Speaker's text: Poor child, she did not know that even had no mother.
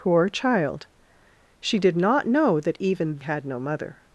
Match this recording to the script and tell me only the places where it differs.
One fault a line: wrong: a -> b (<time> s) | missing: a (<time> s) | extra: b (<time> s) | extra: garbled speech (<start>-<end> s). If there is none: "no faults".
no faults